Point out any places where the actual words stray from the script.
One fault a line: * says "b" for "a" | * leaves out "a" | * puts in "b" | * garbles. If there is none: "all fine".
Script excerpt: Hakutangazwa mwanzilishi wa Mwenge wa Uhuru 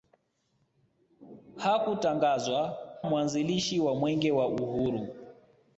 all fine